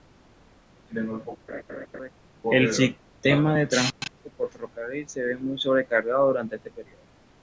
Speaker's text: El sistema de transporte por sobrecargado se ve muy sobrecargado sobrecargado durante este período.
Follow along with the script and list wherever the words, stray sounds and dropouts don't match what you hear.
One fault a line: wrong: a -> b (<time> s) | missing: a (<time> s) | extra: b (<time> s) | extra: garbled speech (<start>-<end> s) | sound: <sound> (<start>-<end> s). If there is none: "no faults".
sound: laugh (1.5-2.1 s)
wrong: sobrecargado -> ferrocarril (4.5 s)
missing: sobrecargado (6.3 s)